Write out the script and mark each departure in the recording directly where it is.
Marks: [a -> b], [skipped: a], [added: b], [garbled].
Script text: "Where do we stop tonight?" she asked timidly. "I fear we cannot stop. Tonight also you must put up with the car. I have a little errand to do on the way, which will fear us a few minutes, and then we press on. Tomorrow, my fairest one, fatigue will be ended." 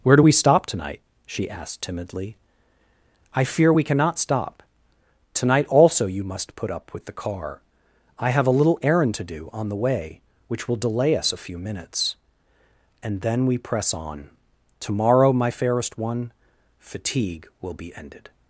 "Where do we stop tonight?" she asked timidly. "I fear we cannot stop. Tonight also you must put up with the car. I have a little errand to do on the way, which will [fear -> delay] us a few minutes, and then we press on. Tomorrow, my fairest one, fatigue will be ended."